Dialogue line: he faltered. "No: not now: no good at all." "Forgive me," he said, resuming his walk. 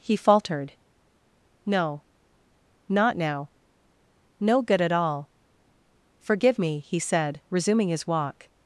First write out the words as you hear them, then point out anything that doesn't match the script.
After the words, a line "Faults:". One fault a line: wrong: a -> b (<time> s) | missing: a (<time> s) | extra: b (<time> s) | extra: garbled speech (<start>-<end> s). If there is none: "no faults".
he faltered. "No: not now: no good at all." "Forgive me," he said, resuming his walk.
Faults:
no faults